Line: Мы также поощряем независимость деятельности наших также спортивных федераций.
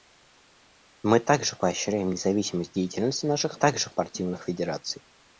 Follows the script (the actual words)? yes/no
yes